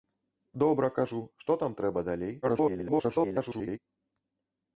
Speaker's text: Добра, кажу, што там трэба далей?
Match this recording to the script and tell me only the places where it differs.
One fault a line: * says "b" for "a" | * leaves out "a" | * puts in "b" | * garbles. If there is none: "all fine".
* garbles